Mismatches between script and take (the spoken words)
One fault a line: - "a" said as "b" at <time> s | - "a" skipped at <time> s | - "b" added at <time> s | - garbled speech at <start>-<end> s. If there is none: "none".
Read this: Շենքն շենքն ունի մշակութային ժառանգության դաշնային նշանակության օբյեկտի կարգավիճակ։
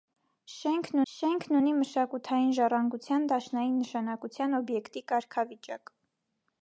none